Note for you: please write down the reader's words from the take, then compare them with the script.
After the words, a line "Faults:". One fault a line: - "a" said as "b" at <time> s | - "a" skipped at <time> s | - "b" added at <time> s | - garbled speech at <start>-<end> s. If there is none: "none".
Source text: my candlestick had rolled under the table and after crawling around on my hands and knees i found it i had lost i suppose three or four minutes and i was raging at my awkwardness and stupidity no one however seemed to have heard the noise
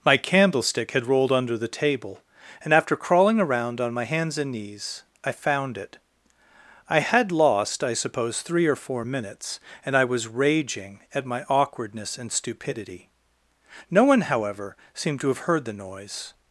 my candlestick had rolled under the table and after crawling around on my hands and knees i found it i had lost i suppose three or four minutes and i was raging at my awkwardness and stupidity no one however seemed to have heard the noise
Faults:
none